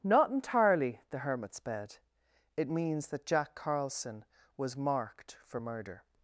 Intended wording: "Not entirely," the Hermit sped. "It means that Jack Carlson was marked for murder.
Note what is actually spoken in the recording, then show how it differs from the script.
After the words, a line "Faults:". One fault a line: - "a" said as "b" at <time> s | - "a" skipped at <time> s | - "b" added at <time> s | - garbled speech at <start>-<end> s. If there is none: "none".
"Not entirely," the Hermit sped. "It means that Jack Carlson was marked for murder.
Faults:
none